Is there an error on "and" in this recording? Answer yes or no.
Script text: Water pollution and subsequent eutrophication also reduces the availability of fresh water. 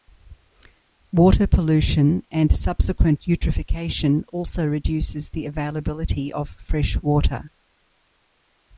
no